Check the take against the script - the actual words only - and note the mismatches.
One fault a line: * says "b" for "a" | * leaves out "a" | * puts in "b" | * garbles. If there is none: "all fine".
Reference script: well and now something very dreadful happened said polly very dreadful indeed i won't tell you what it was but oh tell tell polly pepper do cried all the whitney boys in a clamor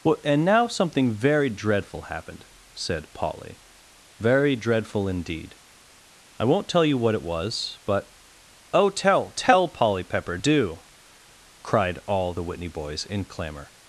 * leaves out "a"